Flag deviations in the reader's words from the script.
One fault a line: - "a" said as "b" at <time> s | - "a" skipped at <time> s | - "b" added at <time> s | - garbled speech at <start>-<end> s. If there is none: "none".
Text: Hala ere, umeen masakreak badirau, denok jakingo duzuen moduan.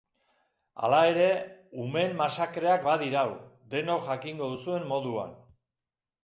none